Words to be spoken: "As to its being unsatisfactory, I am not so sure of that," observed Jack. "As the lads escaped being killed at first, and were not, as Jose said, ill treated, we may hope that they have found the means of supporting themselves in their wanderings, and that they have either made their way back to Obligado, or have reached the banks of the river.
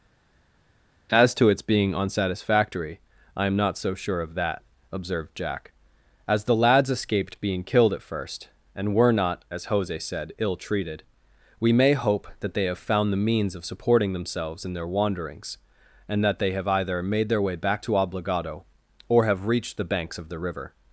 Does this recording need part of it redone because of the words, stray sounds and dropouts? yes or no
no